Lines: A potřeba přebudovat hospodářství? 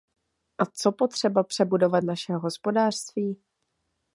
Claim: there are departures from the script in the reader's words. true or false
true